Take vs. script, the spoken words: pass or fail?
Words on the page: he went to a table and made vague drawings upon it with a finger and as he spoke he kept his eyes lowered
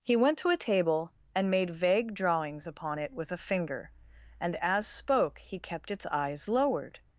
fail